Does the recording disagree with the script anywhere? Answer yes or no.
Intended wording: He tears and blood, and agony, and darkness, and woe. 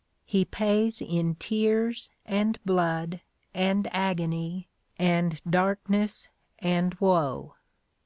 yes